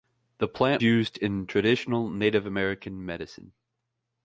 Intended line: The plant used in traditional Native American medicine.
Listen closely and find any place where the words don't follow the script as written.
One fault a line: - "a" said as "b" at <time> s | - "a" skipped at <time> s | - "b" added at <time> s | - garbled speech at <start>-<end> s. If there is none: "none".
none